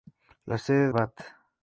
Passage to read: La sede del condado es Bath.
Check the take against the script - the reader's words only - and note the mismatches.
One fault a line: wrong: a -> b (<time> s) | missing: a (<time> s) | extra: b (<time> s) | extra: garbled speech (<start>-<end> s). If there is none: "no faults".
missing: del condado es (0.9 s)